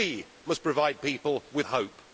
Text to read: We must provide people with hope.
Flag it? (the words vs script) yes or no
no